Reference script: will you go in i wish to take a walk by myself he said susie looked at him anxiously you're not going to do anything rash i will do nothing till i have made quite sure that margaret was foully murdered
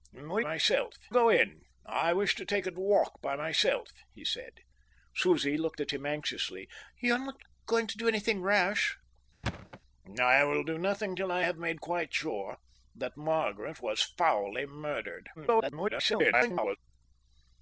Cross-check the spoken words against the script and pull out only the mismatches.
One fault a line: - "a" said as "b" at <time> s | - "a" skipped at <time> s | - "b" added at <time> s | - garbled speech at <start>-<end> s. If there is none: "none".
- "you" said as "myself" at 0.4 s
- garbled speech at 15.4-16.8 s